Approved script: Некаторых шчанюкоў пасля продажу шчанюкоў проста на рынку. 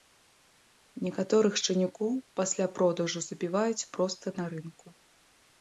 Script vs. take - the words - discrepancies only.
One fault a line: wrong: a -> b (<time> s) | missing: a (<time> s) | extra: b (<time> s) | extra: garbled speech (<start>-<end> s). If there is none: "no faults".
wrong: шчанюкоў -> забіваюць (3.3 s)